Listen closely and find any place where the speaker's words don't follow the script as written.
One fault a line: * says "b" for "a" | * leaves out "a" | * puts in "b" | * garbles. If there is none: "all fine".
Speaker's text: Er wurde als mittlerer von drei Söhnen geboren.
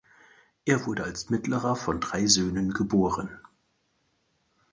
all fine